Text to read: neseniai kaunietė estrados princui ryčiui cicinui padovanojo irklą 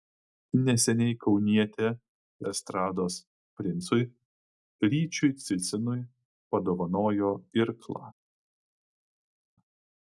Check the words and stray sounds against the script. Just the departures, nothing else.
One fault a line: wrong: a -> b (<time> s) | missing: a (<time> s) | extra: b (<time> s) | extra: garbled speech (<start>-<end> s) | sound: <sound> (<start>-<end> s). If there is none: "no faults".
no faults